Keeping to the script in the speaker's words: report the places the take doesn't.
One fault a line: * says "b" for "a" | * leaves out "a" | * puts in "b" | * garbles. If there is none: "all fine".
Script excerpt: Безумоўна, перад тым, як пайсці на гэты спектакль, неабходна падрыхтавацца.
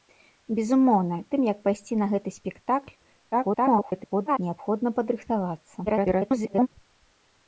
* leaves out "перад"
* garbles
* garbles